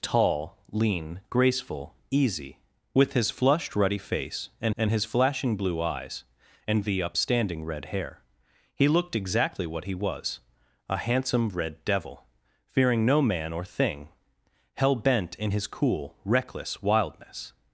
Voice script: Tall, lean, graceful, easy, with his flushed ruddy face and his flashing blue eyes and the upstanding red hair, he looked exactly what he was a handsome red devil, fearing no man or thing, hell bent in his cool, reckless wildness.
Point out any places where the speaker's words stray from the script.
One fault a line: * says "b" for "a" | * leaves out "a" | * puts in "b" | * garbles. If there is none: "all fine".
* puts in "and"